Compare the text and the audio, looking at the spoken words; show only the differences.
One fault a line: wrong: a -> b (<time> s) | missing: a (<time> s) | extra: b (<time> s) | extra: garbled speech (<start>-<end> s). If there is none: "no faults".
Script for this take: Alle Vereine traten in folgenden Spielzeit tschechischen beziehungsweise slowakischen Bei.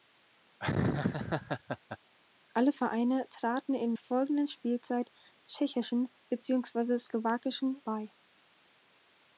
no faults